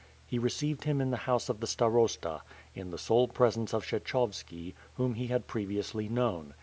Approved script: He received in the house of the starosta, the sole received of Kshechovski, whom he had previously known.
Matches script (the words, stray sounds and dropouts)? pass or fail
fail